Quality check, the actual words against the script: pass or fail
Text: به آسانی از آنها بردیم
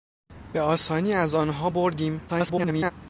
fail